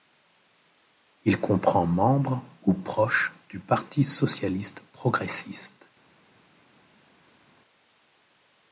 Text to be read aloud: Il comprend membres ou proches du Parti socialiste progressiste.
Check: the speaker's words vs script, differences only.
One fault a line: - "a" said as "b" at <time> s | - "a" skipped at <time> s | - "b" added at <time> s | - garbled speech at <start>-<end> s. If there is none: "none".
none